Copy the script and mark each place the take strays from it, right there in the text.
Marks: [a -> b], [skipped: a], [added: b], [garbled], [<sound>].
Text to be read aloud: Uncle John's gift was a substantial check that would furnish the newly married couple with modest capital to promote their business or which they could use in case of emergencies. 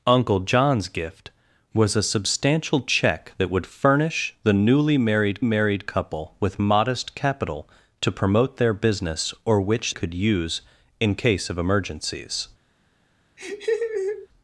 Uncle John's gift was a substantial check that would furnish the newly married [added: married] couple with modest capital to promote their business or which [skipped: they] could use in case of emergencies. [laugh]